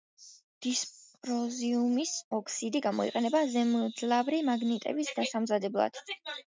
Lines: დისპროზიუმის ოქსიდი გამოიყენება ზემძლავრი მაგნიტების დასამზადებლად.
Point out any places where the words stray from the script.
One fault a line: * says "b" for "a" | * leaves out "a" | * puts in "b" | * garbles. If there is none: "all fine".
all fine